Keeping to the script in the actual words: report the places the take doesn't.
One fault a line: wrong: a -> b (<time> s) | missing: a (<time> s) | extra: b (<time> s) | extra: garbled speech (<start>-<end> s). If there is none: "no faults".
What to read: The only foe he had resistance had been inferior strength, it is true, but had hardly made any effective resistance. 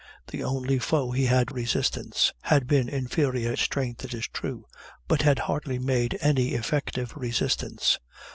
no faults